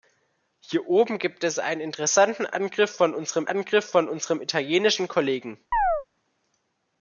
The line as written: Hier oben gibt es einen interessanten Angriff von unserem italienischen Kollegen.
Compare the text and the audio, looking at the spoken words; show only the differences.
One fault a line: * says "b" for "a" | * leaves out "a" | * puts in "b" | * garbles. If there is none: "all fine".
* puts in "Angriff von unserem"